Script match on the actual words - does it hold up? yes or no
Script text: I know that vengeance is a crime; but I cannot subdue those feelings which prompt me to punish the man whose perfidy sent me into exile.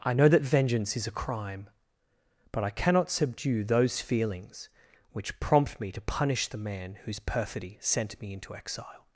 yes